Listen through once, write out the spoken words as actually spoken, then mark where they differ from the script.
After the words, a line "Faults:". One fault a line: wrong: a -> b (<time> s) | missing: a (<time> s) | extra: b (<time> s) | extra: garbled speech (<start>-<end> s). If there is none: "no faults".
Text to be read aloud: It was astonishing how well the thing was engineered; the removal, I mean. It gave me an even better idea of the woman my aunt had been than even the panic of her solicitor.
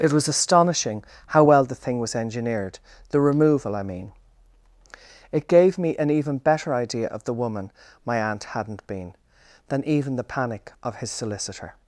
It was astonishing how well the thing was engineered; the removal, I mean. It gave me an even better idea of the woman my aunt hadn't been than even the panic of his solicitor.
Faults:
wrong: had -> hadn't (8.4 s)
wrong: her -> his (11.0 s)